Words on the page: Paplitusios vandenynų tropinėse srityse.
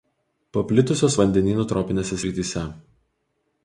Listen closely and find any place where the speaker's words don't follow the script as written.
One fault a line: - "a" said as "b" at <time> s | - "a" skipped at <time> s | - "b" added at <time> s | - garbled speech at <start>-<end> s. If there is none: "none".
none